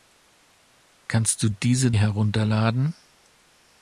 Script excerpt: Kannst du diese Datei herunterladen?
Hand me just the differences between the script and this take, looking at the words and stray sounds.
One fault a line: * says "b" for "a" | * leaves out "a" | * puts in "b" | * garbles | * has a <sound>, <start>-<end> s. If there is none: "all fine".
* leaves out "Datei"